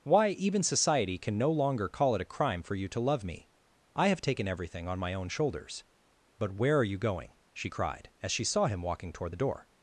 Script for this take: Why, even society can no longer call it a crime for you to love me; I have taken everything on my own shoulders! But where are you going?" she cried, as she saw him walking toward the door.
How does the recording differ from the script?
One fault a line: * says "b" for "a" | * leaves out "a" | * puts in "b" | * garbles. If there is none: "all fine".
all fine